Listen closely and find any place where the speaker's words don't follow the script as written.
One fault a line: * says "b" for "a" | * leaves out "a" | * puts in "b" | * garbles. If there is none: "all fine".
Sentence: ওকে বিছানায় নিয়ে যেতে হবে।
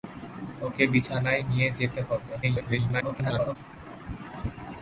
* garbles